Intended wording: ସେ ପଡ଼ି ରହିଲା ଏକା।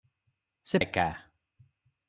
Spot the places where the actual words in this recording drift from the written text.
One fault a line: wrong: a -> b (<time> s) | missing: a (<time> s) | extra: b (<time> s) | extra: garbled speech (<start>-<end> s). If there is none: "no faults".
missing: ପଡ଼ି ରହିଲା (0.8 s)